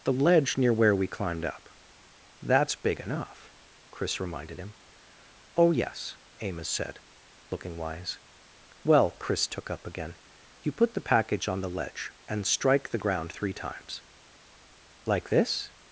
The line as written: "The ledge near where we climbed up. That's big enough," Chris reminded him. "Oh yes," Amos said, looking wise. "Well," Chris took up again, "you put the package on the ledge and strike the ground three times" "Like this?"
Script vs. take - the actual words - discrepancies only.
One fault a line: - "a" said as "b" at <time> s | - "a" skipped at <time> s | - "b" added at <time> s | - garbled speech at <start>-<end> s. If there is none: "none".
none